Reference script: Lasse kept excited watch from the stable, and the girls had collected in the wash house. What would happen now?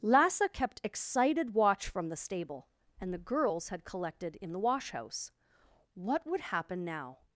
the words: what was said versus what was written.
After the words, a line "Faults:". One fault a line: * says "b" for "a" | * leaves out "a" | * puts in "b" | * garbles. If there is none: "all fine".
Lasse kept excited watch from the stable, and the girls had collected in the wash house. What would happen now?
Faults:
all fine